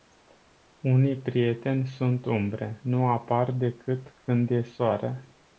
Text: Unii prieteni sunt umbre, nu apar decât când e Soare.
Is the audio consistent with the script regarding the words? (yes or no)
yes